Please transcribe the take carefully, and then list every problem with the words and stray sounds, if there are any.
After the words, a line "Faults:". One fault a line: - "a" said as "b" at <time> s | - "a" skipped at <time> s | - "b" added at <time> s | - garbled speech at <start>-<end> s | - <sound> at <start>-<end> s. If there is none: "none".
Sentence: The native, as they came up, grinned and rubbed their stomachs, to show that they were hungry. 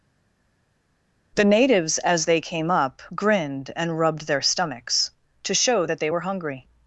The natives, as they came up, grinned and rubbed their stomachs, to show that they were hungry.
Faults:
- "native" said as "natives" at 1.4 s